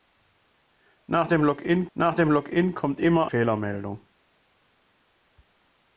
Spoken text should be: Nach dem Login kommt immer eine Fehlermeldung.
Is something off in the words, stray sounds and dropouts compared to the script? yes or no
yes